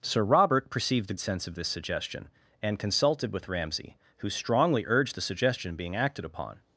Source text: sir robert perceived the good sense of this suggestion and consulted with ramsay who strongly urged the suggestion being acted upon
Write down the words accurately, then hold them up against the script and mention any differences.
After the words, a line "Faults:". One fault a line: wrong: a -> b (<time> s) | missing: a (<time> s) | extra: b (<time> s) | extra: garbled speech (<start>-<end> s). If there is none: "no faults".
sir robert perceived the sense of this suggestion and consulted with ramsay who strongly urged the suggestion being acted upon
Faults:
missing: good (1.2 s)